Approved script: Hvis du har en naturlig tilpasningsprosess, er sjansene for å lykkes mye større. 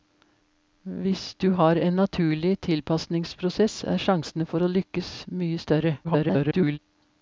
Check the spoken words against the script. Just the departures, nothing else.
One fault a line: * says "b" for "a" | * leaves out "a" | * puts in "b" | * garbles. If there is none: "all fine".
* garbles